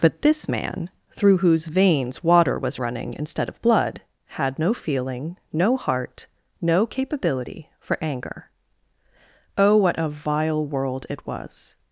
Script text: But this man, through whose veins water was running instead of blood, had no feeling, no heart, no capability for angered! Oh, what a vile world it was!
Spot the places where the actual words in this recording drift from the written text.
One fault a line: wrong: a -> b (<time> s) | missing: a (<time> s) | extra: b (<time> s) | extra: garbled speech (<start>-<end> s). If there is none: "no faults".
wrong: angered -> anger (8.0 s)